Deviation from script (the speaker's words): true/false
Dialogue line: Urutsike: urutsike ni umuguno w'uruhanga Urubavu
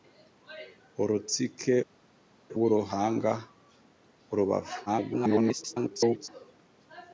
true